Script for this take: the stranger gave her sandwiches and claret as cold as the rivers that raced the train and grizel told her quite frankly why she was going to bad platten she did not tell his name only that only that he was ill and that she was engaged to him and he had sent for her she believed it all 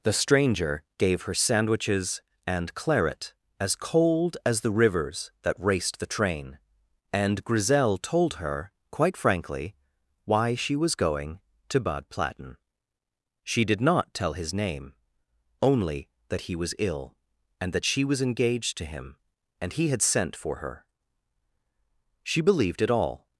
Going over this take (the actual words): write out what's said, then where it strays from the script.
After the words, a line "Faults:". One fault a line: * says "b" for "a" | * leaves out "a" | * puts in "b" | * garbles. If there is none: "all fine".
the stranger gave her sandwiches and claret as cold as the rivers that raced the train and grizel told her quite frankly why she was going to bad platten she did not tell his name only that he was ill and that she was engaged to him and he had sent for her she believed it all
Faults:
* leaves out "only that"